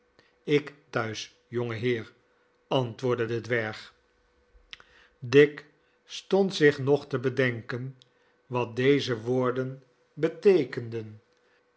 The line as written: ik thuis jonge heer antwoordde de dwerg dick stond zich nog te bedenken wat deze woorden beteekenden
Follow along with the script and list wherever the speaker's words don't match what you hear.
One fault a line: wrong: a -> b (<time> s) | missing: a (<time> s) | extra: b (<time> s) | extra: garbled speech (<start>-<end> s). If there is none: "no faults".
no faults